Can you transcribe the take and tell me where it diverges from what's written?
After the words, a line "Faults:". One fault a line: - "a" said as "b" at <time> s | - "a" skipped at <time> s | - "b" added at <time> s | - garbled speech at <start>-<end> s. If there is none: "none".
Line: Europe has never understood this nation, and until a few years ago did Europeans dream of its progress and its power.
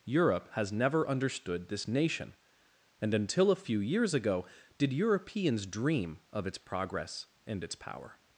Europe has never understood this nation, and until a few years ago did Europeans dream of its progress and its power.
Faults:
none